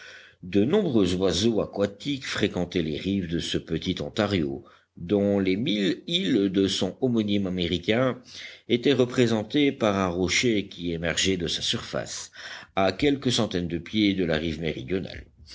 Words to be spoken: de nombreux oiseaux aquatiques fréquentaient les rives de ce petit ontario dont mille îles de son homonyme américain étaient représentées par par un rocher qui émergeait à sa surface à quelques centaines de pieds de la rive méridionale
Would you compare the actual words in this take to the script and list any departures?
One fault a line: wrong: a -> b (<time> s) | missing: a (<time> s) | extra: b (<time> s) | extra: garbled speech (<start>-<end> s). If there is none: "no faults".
extra: les (5.4 s)
missing: par (9.9 s)
wrong: à -> de (11.4 s)